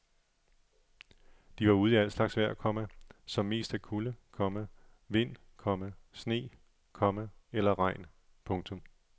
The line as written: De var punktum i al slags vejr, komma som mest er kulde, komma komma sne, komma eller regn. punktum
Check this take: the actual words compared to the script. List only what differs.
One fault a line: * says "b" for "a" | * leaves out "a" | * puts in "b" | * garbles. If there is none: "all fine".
* says "ude" for "punktum"
* puts in "vind"